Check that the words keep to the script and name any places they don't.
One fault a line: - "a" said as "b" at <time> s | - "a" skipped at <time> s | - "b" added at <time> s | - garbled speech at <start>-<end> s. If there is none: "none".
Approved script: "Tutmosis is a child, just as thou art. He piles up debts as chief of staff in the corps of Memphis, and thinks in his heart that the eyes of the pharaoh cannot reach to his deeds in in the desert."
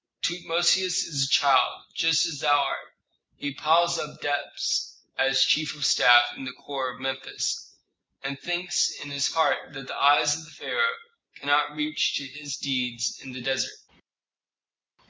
- "in" skipped at 13.3 s